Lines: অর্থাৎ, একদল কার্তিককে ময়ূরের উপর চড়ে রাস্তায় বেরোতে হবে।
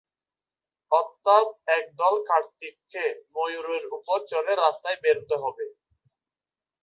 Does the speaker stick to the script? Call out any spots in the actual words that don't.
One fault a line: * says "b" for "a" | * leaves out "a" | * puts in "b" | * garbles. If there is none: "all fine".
all fine